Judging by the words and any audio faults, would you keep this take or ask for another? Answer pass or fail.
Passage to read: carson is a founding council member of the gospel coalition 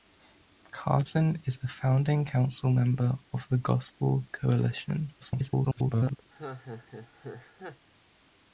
fail